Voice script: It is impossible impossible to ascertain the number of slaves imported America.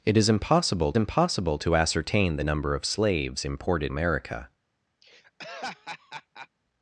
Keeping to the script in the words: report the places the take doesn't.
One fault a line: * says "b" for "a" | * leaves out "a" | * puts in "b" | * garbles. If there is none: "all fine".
all fine